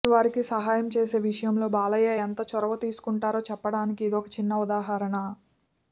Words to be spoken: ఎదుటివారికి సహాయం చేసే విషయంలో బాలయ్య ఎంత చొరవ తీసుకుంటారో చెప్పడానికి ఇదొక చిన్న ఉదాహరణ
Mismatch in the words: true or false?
false